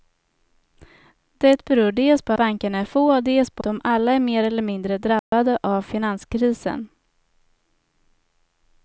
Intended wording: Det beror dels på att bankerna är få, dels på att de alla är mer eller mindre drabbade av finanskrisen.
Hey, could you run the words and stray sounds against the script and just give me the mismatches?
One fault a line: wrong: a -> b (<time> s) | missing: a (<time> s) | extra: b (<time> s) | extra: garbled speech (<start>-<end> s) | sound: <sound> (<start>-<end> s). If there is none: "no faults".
missing: att (2.3 s)
missing: att (3.6 s)
sound: dropout (5.2-5.3 s)